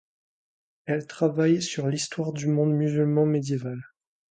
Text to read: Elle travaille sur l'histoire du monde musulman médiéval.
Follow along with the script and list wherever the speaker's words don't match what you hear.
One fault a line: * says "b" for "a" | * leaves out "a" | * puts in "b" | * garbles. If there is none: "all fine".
all fine